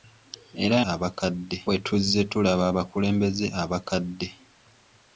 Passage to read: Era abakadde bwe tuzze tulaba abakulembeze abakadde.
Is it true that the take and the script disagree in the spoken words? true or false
false